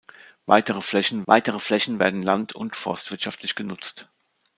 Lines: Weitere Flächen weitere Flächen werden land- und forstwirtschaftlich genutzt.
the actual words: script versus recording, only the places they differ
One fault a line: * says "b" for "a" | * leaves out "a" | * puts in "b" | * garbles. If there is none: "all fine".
all fine